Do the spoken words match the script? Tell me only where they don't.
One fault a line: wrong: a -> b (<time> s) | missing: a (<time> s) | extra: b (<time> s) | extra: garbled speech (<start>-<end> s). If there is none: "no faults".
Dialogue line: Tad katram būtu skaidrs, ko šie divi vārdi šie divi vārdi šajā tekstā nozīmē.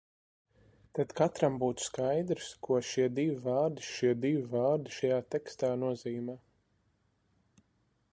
no faults